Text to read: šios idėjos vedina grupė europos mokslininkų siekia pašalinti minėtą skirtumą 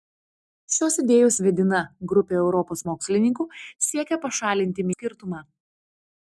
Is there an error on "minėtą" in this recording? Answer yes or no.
yes